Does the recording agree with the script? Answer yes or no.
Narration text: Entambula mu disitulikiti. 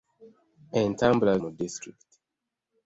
yes